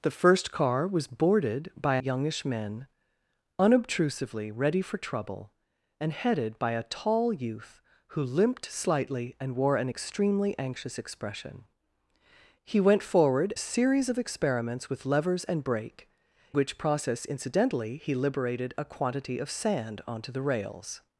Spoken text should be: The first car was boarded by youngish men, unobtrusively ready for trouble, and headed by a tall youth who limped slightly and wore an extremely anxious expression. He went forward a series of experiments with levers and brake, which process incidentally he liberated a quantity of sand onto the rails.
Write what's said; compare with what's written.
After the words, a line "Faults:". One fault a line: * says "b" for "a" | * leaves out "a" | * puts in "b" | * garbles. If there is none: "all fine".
The first car was boarded by youngish men, unobtrusively ready for trouble, and headed by a tall youth who limped slightly and wore an extremely anxious expression. He went forward a series of experiments with levers and brake, which process incidentally he liberated a quantity of sand onto the rails.
Faults:
all fine